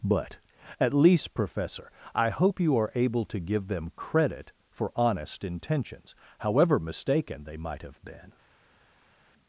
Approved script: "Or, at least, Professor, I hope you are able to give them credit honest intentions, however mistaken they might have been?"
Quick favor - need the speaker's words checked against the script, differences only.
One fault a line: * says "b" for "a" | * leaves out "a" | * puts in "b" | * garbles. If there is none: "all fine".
* says "But" for "Or"
* puts in "for"